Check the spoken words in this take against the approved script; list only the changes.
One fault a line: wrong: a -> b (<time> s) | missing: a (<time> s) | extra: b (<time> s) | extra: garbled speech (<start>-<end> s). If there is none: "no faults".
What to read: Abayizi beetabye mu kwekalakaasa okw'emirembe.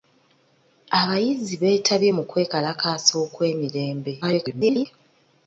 extra: garbled speech (4.2-4.9 s)